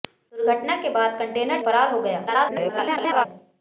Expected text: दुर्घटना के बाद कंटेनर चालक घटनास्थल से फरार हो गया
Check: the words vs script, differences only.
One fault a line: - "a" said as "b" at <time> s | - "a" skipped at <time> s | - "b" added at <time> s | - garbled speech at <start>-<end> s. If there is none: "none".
- "चालक घटनास्थल से" skipped at 1.6 s
- garbled speech at 2.3-3.3 s